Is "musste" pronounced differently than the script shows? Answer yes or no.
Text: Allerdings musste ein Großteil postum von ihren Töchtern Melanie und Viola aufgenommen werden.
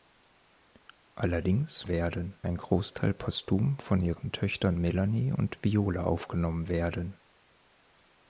yes